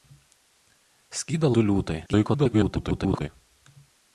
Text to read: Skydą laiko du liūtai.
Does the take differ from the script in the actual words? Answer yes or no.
yes